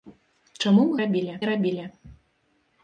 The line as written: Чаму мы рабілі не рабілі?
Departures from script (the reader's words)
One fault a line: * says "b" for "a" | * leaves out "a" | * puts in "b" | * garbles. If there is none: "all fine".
all fine